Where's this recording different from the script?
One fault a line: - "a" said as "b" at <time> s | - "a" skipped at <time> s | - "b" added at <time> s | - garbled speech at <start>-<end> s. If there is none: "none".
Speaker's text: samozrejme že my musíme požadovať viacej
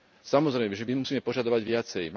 none